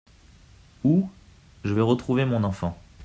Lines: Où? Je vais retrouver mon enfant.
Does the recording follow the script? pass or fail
pass